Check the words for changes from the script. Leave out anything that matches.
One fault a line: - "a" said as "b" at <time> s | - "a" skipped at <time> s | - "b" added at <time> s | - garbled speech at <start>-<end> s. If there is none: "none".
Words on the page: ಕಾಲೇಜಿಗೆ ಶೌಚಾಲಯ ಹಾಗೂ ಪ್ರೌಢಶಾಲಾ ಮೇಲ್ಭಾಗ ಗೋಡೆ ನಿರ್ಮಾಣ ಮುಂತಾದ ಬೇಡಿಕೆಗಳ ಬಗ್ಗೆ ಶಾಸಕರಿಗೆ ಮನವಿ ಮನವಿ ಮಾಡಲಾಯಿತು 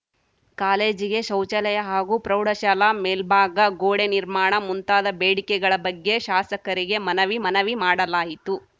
none